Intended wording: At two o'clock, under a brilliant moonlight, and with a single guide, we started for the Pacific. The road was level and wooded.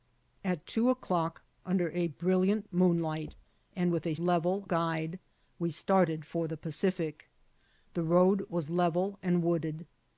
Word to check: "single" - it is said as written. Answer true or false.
false